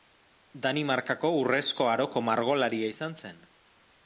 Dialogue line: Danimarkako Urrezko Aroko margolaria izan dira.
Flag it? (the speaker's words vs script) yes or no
yes